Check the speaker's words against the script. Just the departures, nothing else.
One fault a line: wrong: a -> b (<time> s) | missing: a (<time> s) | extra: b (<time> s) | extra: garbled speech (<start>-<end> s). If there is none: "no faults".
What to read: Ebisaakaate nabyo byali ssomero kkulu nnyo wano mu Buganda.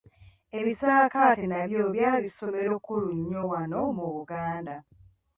no faults